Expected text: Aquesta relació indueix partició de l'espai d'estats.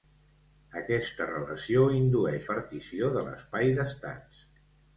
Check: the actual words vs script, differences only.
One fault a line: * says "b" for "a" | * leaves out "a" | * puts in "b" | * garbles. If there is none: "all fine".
all fine